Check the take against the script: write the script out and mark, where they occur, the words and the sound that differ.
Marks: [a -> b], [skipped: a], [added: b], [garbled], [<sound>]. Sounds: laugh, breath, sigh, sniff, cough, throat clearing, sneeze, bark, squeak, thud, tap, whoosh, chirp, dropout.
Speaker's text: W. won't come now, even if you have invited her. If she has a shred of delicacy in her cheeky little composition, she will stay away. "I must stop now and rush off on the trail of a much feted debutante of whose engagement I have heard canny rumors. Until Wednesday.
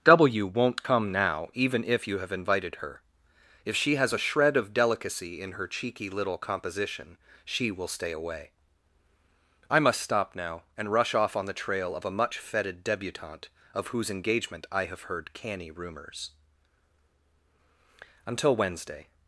W. won't come now, even if you have invited her. If she has a shred of delicacy in her cheeky little composition, she will stay away. "I must stop now and rush off on the trail of a much feted debutante of whose engagement I have heard canny rumors. Until Wednesday.